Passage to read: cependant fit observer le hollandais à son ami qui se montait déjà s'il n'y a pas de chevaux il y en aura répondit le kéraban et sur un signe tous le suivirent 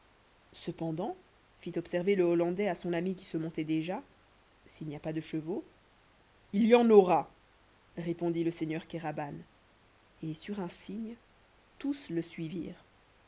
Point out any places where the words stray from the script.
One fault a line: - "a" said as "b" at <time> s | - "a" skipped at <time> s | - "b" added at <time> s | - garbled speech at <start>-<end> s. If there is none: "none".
- "seigneur" added at 8.5 s